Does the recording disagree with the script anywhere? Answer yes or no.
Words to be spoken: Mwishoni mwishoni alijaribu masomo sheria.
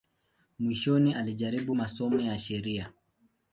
yes